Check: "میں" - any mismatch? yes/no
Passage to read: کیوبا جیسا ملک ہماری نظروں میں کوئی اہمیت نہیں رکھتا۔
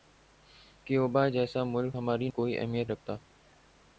yes